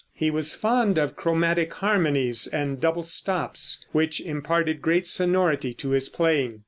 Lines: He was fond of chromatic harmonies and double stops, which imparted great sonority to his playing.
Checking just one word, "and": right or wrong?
right